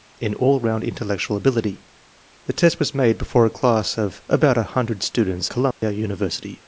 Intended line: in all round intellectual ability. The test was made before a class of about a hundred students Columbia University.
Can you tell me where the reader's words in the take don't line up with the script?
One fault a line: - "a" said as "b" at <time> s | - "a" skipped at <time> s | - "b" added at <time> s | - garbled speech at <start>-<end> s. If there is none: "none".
none